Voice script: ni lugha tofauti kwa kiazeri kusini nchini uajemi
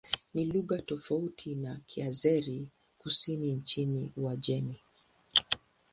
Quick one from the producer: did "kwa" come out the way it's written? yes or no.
no